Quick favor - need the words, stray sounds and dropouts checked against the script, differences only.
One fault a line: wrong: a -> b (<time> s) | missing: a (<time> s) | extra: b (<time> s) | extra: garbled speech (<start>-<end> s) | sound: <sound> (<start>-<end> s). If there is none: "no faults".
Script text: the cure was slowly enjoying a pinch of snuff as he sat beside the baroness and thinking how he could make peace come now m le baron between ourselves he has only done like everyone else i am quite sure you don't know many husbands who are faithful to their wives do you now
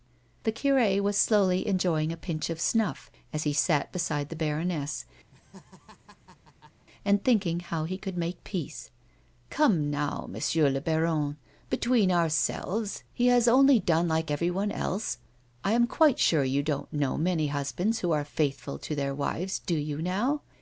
sound: laugh (5.3-6.9 s)